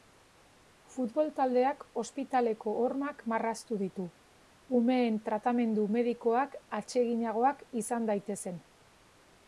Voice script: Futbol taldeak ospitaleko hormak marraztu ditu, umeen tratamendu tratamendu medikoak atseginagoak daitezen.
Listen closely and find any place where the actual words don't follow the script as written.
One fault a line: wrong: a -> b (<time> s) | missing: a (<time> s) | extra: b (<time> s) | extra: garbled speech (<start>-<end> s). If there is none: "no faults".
missing: tratamendu (5.9 s)
extra: izan (7.8 s)